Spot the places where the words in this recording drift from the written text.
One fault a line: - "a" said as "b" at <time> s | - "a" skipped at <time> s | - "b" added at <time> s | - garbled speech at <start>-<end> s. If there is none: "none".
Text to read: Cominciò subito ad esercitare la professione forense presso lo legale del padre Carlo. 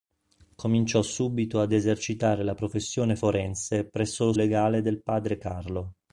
none